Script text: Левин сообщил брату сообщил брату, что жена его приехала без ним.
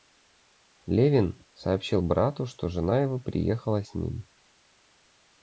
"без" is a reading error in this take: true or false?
true